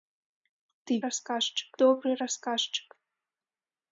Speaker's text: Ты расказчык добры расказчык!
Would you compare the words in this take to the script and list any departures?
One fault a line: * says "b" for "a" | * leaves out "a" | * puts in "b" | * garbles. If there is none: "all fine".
all fine